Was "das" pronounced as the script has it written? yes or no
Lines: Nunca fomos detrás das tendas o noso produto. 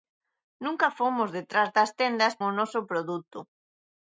yes